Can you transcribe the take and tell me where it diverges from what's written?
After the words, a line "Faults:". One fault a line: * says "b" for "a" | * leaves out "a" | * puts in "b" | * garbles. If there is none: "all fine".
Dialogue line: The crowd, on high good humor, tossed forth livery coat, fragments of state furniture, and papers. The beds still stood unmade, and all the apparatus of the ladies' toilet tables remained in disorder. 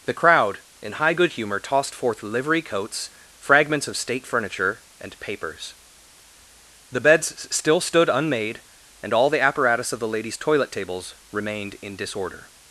The crowd, in high good humor, tossed forth livery coats, fragments of state furniture, and papers. The beds still stood unmade, and all the apparatus of the ladies' toilet tables remained in disorder.
Faults:
* says "in" for "on"
* says "coats" for "coat"